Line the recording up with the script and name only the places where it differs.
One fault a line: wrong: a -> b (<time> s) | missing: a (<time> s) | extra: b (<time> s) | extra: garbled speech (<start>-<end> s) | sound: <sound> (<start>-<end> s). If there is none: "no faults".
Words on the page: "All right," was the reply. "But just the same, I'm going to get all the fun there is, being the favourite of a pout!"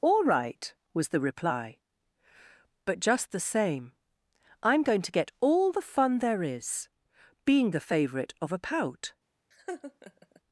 sound: laugh (9.5-10.4 s)